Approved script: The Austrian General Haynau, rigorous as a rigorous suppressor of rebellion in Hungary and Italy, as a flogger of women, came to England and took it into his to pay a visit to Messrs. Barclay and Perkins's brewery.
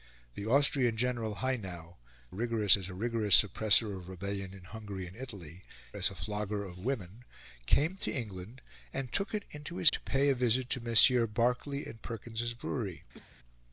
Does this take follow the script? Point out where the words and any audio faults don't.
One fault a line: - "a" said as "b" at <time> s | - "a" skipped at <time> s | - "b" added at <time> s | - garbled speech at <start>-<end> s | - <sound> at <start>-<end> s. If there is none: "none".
- cough at 13.1-13.4 s